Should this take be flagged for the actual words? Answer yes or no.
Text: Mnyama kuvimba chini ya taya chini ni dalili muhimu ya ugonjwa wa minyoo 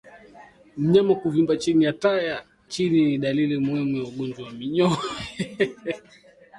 no